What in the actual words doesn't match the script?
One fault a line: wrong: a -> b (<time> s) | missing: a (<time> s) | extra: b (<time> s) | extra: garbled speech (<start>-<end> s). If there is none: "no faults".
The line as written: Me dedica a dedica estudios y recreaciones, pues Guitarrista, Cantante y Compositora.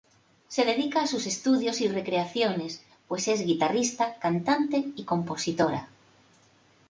wrong: Me -> Se (0.5 s)
wrong: dedica -> sus (1.1 s)
extra: es (3.3 s)